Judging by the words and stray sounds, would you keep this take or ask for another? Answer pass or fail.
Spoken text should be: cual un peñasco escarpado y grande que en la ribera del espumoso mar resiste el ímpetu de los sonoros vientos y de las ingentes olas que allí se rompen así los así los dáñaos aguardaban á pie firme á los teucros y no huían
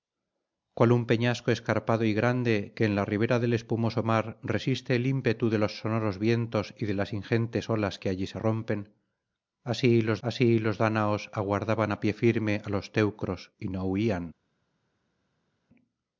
pass